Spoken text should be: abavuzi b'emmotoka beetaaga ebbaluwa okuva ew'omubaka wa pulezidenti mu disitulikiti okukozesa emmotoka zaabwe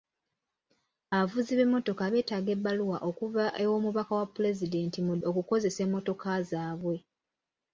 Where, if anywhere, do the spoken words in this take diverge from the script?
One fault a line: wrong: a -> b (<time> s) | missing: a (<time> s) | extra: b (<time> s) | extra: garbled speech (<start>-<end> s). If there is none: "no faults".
missing: disitulikiti (5.1 s)